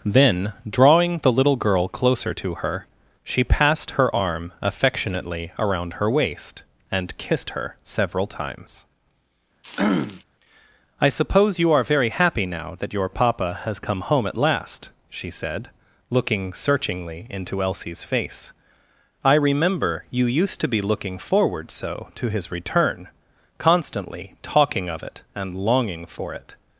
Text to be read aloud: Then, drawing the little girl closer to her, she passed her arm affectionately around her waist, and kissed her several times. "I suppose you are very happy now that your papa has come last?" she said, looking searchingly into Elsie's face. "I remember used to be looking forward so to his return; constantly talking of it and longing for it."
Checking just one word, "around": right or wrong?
right